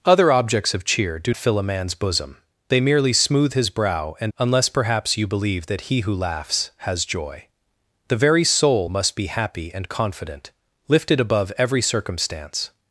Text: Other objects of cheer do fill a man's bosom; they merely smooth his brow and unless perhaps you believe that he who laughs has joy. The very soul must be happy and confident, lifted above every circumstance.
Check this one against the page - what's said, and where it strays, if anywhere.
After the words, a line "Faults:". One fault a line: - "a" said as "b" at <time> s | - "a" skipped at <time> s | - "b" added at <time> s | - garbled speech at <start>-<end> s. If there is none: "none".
Other objects of cheer do fill a man's bosom; they merely smooth his brow and unless perhaps you believe that he who laughs has joy. The very soul must be happy and confident, lifted above every circumstance.
Faults:
none